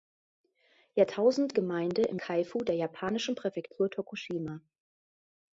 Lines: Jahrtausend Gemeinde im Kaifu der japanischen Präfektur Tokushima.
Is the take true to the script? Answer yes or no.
yes